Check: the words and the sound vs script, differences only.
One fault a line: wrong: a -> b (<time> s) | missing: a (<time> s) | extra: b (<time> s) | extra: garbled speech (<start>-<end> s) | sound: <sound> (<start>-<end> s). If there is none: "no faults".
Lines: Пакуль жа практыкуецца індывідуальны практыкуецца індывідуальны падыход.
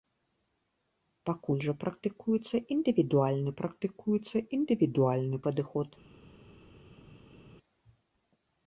no faults